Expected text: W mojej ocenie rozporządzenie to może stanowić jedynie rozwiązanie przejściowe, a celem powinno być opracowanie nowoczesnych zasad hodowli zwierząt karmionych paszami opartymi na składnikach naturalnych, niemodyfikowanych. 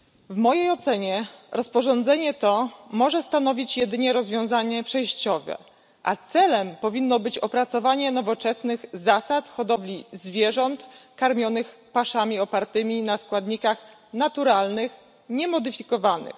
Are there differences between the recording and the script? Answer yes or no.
no